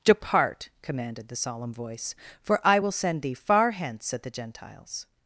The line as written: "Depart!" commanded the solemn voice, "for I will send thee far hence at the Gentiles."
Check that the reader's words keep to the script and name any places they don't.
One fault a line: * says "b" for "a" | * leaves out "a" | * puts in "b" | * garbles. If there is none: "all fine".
all fine